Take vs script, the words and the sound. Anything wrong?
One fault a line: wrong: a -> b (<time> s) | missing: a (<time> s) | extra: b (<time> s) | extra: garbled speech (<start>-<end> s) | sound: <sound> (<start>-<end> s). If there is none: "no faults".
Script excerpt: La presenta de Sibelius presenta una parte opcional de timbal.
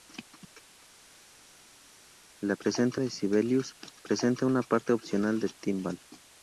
no faults